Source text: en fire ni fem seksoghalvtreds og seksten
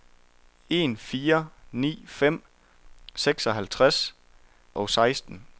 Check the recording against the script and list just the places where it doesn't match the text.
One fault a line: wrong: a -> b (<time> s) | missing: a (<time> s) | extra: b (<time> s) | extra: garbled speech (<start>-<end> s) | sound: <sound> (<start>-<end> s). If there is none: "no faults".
no faults